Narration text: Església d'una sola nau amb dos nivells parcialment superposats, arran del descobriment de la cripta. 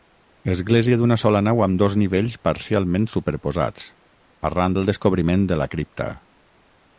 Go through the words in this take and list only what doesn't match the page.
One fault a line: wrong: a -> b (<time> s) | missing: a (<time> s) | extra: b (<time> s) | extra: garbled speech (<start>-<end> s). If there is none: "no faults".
no faults